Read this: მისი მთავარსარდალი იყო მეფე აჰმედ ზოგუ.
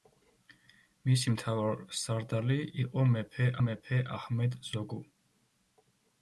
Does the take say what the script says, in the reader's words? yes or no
no